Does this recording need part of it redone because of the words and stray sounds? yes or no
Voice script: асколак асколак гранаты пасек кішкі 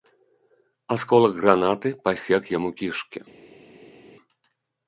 yes